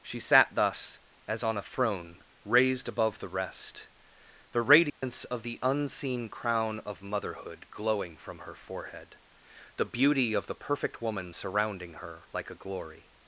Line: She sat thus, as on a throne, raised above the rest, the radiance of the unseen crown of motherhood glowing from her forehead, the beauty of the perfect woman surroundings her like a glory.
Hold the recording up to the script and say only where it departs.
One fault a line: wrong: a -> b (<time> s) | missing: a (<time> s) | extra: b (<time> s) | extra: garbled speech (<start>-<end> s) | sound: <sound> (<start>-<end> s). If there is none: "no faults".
sound: dropout (4.9-5.0 s)
wrong: surroundings -> surrounding (11.3 s)